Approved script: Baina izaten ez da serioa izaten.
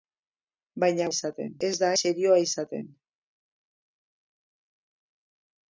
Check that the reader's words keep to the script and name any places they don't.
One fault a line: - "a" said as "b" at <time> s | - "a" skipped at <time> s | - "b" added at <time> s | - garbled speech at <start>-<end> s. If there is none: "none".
none